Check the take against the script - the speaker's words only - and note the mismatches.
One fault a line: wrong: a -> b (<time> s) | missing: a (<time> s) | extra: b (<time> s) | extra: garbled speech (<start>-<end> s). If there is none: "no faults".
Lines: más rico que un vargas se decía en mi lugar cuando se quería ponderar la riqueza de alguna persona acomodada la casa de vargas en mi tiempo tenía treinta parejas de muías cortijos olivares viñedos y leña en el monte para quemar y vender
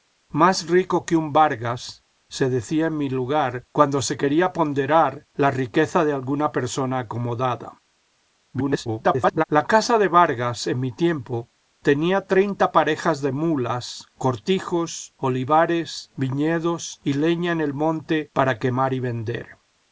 extra: garbled speech (8.5-9.4 s)